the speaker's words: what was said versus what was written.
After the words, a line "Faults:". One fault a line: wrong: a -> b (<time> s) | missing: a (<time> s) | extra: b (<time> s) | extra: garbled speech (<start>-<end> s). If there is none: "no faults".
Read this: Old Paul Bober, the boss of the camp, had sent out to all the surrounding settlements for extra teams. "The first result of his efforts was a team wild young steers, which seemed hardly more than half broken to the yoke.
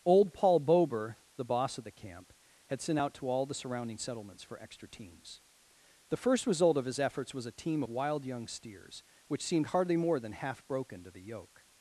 Old Paul Bober, the boss of the camp, had sent out to all the surrounding settlements for extra teams. "The first result of his efforts was a team wild young steers, which seemed hardly more than half broken to the yoke.
Faults:
no faults